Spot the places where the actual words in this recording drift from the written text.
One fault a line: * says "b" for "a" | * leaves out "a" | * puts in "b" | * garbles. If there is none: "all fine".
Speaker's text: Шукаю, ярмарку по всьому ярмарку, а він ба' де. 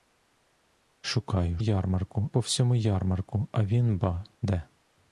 all fine